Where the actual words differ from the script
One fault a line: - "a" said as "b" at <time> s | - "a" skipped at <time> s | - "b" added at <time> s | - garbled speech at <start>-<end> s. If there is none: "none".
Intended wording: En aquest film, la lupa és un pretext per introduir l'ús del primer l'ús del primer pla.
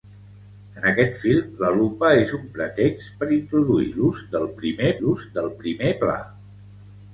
none